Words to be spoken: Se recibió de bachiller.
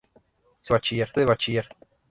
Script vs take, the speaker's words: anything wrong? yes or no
yes